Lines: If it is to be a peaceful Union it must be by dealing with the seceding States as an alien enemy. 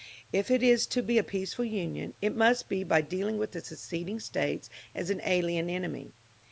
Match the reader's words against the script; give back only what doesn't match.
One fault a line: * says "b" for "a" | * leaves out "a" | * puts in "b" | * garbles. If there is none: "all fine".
all fine